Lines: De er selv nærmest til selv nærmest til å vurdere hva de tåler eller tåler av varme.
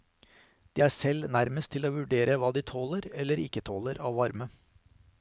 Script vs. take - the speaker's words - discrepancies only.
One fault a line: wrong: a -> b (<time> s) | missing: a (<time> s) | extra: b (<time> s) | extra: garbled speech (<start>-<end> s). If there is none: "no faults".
missing: selv nærmest til (1.9 s)
extra: ikke (3.5 s)